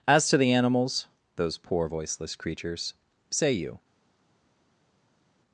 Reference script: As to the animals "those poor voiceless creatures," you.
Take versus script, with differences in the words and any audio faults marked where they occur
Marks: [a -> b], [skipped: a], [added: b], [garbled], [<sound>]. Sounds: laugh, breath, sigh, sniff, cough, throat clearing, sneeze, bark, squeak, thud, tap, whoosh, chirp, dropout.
As to the animals "those poor voiceless creatures," [added: say] you.